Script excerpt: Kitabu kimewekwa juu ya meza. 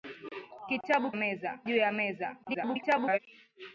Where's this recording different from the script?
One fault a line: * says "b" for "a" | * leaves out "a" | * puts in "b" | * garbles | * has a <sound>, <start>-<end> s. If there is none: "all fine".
* says "meza" for "kimewekwa"
* garbles